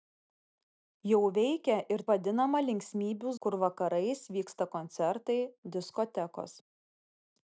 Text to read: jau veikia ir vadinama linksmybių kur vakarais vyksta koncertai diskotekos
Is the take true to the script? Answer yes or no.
yes